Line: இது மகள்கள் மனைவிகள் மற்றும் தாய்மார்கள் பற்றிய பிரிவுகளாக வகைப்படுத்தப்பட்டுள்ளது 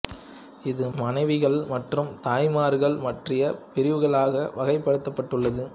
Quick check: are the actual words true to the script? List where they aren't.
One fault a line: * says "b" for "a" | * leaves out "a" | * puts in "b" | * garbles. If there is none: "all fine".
* leaves out "மகள்கள்"